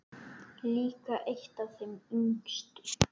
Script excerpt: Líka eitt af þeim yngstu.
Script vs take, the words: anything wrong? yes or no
no